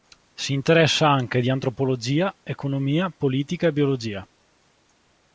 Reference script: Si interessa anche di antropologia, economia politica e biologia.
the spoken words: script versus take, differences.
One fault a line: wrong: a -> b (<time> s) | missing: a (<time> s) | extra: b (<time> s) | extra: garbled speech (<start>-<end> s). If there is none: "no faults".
no faults